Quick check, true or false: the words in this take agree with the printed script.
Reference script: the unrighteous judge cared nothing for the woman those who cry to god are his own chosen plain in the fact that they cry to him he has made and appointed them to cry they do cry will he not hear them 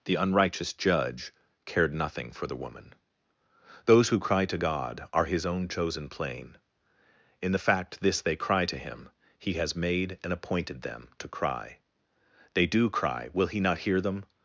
false